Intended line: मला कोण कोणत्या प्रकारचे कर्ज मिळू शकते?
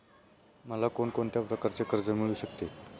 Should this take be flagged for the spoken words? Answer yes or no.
no